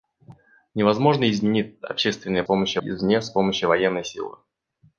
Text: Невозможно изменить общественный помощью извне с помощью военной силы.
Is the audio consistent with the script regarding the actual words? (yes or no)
yes